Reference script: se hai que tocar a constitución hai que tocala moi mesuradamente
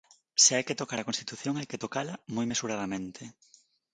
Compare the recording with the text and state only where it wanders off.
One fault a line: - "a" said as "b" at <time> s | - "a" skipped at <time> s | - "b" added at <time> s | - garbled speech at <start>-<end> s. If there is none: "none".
none